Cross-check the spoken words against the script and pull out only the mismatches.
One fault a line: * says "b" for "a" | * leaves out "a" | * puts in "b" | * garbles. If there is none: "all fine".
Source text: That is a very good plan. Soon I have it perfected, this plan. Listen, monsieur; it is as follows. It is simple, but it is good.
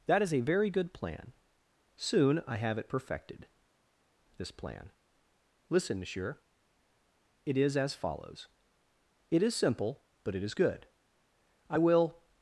* puts in "I will"